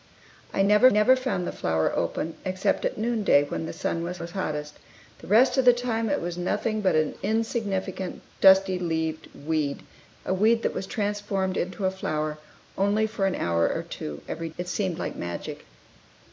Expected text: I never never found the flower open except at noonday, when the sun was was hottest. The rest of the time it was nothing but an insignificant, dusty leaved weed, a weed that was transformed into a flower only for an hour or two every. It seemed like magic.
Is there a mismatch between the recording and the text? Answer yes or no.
no